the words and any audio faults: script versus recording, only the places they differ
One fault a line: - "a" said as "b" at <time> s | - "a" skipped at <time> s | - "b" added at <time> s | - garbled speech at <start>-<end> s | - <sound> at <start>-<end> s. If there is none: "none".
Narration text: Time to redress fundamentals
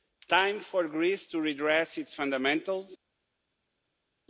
- "for Greece" added at 0.6 s
- "its" added at 2.0 s